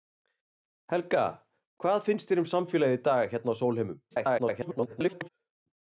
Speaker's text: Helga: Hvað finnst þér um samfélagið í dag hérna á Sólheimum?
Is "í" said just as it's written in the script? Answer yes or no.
yes